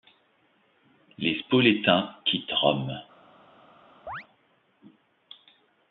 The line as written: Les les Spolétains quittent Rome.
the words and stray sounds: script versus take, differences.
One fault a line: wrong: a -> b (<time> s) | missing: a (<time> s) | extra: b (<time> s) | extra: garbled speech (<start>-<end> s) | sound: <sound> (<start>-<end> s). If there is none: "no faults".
missing: les (1.4 s)
sound: chirp (4.1-4.2 s)